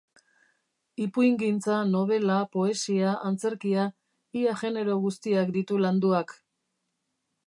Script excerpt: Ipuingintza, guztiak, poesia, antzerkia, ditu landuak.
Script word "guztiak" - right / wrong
wrong